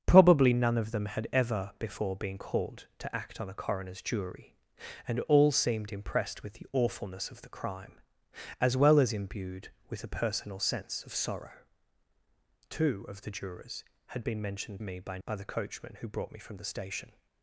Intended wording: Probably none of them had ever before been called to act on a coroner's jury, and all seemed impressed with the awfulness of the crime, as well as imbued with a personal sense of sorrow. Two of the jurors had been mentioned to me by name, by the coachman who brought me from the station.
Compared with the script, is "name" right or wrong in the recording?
wrong